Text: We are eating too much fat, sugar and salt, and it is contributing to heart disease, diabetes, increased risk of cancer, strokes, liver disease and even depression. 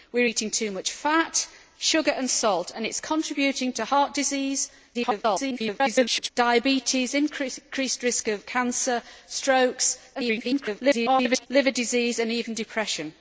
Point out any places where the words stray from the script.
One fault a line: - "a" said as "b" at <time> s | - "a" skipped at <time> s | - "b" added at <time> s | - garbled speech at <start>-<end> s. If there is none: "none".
- garbled speech at 4.9-6.3 s
- garbled speech at 10.1-11.5 s